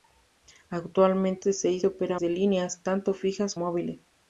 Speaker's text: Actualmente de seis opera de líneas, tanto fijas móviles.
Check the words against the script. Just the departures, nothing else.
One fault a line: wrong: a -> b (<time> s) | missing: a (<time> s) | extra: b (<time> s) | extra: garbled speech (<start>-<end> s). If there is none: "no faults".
no faults